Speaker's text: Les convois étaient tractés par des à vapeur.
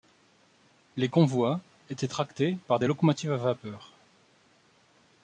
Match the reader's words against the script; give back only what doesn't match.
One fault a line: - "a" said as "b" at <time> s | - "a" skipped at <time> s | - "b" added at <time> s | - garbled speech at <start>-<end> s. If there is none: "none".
- "locomotives" added at 2.9 s